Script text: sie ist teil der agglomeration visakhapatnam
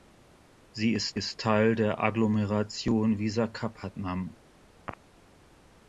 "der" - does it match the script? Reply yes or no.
yes